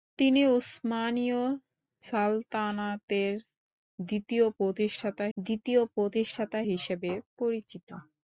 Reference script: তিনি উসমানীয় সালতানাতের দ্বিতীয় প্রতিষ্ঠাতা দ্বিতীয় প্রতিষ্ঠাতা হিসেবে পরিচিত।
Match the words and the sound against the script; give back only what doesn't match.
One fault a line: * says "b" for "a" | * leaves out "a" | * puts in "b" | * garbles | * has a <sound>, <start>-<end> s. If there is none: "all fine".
all fine